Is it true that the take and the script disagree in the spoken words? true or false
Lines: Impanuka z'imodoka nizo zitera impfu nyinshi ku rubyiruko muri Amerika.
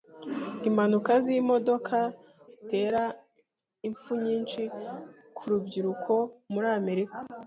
true